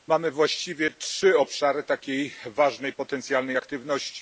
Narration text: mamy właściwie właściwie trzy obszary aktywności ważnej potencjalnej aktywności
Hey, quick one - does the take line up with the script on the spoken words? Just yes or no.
no